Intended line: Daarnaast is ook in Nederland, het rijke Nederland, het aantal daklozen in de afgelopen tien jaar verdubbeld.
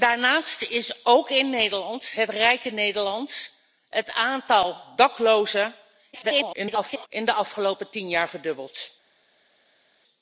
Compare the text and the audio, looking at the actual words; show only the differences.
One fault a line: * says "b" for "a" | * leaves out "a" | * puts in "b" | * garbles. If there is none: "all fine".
* garbles